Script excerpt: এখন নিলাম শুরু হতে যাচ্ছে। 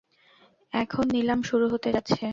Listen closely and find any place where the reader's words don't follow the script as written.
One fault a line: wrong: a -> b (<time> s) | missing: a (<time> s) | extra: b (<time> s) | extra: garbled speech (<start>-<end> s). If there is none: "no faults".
no faults